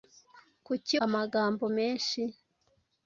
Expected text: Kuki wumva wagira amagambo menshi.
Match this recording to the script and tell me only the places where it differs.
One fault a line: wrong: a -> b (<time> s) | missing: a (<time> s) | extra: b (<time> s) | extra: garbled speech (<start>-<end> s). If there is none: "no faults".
missing: wumva wagira (0.9 s)